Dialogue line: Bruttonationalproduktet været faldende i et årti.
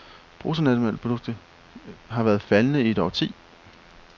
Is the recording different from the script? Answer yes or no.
yes